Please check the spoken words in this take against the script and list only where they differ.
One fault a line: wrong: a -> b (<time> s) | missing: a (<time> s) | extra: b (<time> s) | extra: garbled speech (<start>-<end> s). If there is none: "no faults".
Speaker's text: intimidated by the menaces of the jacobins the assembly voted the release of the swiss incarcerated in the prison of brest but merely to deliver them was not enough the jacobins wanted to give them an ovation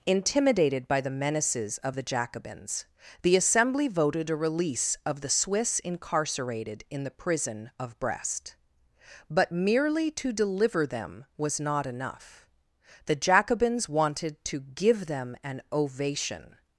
wrong: the -> a (4.3 s)